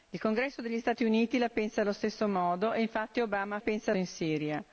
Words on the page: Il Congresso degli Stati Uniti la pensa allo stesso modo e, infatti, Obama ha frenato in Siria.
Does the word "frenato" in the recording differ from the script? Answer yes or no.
yes